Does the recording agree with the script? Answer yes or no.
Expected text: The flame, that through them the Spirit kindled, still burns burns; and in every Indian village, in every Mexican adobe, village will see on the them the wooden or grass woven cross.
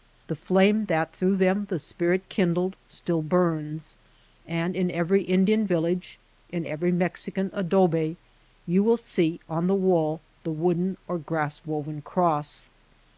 no